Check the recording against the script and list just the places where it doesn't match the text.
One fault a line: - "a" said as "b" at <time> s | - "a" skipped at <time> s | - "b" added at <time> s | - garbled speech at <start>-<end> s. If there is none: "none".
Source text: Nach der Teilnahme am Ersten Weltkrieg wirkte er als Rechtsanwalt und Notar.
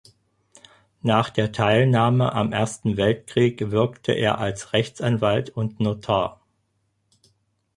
none